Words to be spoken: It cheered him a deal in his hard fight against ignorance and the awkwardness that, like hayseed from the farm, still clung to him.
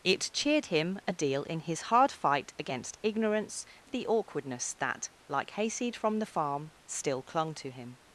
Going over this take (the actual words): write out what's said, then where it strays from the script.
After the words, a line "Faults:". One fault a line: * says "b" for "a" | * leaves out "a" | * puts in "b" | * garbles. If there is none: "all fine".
It cheered him a deal in his hard fight against ignorance the awkwardness that, like hayseed from the farm, still clung to him.
Faults:
* leaves out "and"